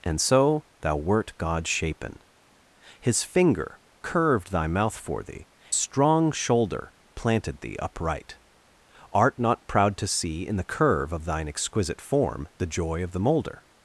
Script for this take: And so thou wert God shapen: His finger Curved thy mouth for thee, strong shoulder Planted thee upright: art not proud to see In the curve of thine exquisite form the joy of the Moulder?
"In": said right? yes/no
yes